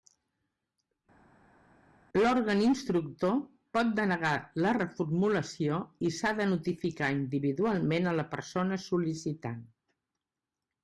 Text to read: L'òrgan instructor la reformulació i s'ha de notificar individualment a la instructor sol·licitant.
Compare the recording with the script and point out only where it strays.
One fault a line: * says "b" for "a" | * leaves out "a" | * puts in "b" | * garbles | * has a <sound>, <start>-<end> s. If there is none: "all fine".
* puts in "pot denegar"
* says "persona" for "instructor"